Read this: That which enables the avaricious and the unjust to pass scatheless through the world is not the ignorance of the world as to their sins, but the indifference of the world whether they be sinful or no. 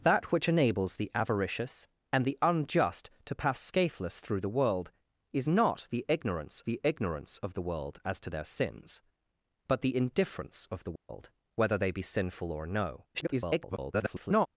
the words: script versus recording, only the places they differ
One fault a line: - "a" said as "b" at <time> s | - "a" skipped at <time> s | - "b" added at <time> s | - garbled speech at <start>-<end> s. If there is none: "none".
- "the ignorance" added at 6.7 s
- garbled speech at 13.1-14.5 s